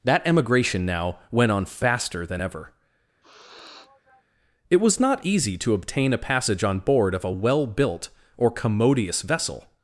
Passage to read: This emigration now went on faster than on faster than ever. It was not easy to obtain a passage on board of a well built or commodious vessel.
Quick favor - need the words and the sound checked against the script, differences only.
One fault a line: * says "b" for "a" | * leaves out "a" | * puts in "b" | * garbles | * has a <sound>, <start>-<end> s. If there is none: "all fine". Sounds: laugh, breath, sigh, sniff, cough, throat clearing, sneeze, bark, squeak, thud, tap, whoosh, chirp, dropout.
* says "That" for "This"
* leaves out "on faster than"
* has a sniff, 3.2-4.2 s